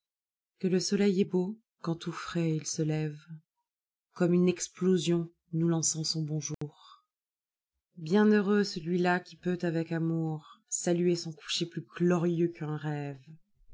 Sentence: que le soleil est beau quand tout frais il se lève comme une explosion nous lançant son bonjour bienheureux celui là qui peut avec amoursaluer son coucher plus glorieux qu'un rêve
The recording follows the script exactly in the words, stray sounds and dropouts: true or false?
false